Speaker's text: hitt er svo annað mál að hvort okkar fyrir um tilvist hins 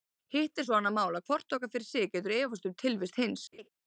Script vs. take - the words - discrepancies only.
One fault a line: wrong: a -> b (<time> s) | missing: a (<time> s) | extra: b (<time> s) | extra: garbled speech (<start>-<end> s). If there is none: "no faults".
extra: sig getur efast (1.9 s)